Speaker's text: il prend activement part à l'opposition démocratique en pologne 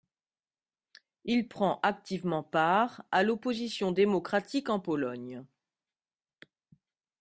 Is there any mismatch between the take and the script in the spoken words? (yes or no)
no